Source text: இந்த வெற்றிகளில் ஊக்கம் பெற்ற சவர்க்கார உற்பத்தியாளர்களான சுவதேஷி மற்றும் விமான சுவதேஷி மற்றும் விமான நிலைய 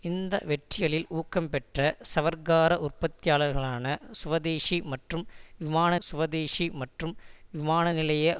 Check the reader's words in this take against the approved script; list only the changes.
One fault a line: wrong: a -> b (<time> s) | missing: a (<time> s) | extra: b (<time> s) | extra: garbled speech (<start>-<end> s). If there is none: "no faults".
no faults